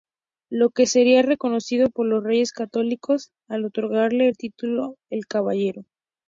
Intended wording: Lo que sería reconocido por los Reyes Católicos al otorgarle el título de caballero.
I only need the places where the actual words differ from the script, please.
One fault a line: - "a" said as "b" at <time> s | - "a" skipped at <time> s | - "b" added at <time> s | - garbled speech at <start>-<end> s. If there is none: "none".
none